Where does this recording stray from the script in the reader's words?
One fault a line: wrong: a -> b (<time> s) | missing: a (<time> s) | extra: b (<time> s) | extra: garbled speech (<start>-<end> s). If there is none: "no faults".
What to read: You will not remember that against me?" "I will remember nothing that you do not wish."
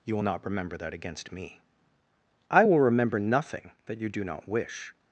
no faults